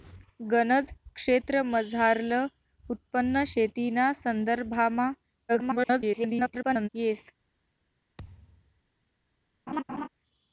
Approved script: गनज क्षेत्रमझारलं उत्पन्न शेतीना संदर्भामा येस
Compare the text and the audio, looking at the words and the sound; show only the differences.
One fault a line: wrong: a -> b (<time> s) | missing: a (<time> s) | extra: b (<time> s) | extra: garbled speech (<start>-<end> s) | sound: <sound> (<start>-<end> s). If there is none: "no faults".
extra: garbled speech (5.5-6.9 s)
sound: thud (8.2-8.8 s)
sound: laugh (9.7-10.1 s)